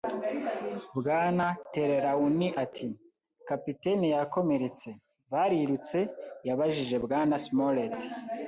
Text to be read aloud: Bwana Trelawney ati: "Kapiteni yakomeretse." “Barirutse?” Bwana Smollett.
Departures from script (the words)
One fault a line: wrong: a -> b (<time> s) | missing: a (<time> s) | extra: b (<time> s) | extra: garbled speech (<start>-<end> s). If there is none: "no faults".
extra: yabajije (6.5 s)